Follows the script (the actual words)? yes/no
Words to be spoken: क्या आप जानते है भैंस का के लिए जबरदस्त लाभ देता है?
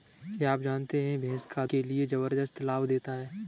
yes